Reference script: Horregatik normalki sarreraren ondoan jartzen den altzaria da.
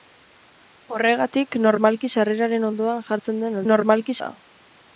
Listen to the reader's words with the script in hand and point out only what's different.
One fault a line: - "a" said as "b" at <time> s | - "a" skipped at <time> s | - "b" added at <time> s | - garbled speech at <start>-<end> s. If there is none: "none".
- "altzaria" said as "normalki" at 3.7 s